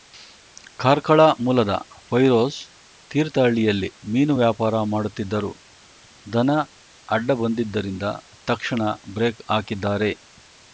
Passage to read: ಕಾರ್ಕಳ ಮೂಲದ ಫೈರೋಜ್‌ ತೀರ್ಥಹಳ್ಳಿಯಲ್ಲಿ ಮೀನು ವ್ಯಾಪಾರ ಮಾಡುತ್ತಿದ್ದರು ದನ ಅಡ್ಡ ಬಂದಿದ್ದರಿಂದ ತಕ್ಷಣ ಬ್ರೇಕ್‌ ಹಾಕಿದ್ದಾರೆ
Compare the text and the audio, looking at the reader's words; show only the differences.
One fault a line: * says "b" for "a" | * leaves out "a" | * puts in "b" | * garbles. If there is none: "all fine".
all fine